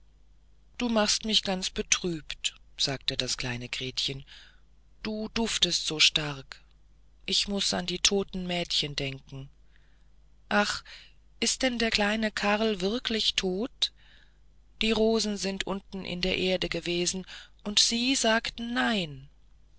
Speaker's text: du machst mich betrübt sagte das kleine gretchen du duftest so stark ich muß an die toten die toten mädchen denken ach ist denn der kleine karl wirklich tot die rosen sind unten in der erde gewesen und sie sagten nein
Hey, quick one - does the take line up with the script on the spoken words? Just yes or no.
no